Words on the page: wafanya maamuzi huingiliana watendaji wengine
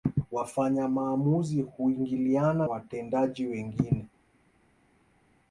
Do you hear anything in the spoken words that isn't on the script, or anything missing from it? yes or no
no